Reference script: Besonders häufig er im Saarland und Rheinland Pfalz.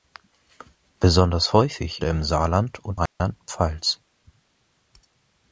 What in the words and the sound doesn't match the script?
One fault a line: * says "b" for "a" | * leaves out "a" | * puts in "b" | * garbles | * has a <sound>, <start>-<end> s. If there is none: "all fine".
* has a dropout, 3.1-3.2 s